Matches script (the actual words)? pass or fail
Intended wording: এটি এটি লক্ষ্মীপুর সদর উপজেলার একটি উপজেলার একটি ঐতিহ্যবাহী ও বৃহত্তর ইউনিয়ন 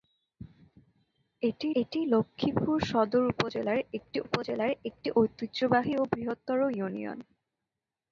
pass